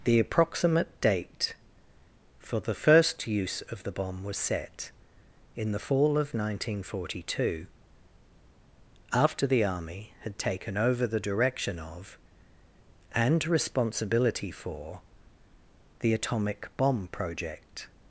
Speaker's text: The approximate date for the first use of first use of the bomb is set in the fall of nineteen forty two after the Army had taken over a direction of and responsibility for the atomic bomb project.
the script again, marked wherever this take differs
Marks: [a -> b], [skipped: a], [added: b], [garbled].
The approximate date for the first use of [skipped: first use of] the bomb [is -> was] set in the fall of nineteen forty two after the Army had taken over [a -> the] direction of and responsibility for the atomic bomb project.